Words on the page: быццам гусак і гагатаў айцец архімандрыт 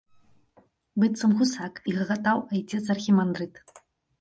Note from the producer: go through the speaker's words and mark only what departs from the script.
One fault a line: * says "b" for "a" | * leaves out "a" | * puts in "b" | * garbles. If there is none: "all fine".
all fine